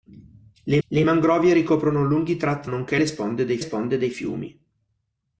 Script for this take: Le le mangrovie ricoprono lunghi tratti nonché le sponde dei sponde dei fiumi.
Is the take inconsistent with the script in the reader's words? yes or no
no